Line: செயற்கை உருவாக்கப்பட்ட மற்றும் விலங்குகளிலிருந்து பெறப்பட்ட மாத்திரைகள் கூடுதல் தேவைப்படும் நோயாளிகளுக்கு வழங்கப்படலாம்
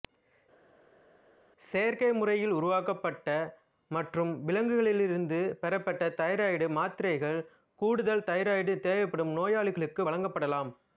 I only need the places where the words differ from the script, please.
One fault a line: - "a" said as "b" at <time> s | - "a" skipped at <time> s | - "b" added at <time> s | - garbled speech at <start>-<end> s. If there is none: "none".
- "முறையில்" added at 2.1 s
- "தைராய்டு" added at 6.2 s
- "தைராய்டு" added at 8.3 s